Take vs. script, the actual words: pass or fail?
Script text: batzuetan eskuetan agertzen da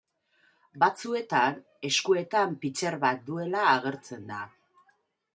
fail